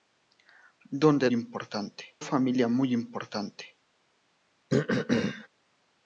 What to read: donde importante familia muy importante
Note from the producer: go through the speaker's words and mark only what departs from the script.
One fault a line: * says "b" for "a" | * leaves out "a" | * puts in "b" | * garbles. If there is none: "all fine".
all fine